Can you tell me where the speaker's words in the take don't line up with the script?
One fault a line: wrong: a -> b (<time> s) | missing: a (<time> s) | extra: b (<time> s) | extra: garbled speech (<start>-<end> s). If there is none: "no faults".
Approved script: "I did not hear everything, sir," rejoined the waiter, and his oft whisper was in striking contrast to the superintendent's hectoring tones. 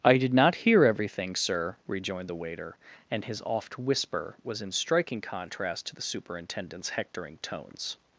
no faults